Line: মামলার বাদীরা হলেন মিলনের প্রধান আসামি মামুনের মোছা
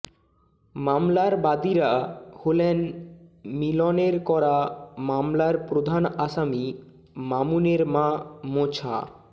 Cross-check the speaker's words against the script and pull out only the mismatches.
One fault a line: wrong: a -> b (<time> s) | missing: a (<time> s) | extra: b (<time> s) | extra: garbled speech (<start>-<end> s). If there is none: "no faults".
extra: করা মামলার (4.2 s)
extra: মা (7.8 s)